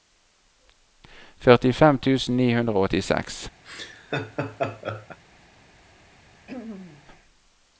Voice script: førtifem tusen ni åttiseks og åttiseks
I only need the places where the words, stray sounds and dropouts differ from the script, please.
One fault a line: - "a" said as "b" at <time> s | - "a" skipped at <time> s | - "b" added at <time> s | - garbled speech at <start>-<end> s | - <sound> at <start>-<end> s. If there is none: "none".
- "åttiseks" said as "hundre" at 2.6 s
- laugh at 3.6-5.2 s
- throat clearing at 6.5-7.1 s